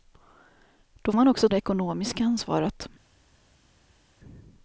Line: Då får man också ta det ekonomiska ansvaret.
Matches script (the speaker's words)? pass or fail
fail